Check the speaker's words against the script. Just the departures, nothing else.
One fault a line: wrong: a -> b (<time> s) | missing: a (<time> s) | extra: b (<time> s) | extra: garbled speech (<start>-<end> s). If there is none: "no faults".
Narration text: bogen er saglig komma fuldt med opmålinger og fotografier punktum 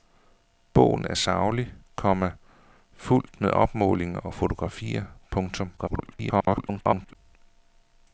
extra: garbled speech (5.8-7.2 s)